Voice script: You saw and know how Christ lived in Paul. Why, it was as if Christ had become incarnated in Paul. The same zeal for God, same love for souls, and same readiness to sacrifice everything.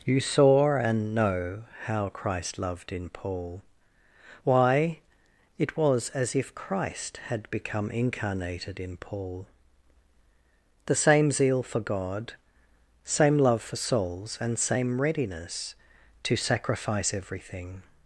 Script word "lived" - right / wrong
wrong